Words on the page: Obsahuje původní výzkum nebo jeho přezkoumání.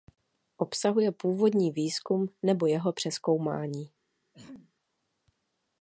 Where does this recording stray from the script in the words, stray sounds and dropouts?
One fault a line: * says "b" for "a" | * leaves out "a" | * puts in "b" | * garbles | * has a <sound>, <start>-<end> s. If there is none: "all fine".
* has a throat clearing, 4.3-4.7 s